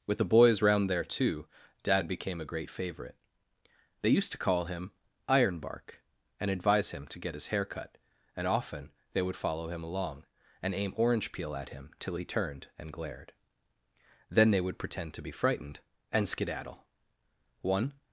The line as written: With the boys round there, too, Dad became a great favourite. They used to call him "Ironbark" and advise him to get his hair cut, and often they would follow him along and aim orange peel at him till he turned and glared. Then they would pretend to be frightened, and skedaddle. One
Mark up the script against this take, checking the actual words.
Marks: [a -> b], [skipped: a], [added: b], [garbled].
With the boys round there, too, Dad became a great favourite. They used to call him "Ironbark" and advise him to get his hair cut, and often they would follow him along and aim orange peel at him till he turned and glared. Then they would pretend to be frightened, and skedaddle. One